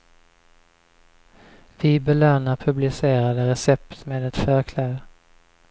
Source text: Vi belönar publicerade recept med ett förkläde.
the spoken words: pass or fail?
pass